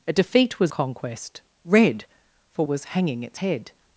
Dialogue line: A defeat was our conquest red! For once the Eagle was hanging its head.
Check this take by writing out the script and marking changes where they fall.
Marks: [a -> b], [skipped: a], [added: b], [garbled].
A defeat was [skipped: our] conquest red! For [skipped: once the Eagle] was hanging its head.